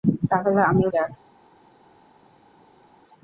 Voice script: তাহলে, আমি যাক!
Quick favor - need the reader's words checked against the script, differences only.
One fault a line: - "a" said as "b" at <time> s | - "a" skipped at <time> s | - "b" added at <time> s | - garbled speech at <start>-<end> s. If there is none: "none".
none